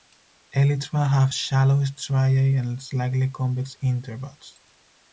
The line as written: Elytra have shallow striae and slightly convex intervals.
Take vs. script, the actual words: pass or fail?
pass